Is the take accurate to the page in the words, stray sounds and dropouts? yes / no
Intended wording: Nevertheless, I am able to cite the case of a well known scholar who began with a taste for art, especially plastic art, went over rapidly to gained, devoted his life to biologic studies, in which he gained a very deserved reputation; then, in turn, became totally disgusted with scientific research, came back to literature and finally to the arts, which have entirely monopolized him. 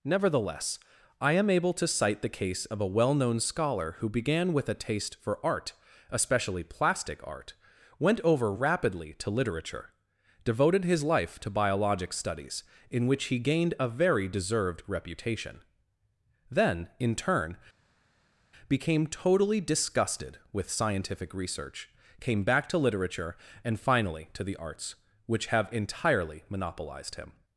no